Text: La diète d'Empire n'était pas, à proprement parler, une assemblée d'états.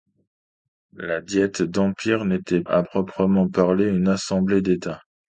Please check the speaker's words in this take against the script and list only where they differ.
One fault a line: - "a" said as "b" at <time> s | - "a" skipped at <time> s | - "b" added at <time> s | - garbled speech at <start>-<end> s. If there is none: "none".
- "pas" skipped at 2.6 s